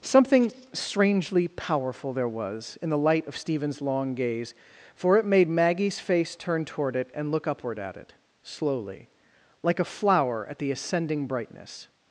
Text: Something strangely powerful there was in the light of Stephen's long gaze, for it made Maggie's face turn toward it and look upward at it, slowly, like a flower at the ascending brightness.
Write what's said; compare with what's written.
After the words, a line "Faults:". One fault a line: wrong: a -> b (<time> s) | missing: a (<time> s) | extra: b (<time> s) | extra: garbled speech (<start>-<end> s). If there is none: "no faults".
Something strangely powerful there was in the light of Stephen's long gaze, for it made Maggie's face turn toward it and look upward at it, slowly, like a flower at the ascending brightness.
Faults:
no faults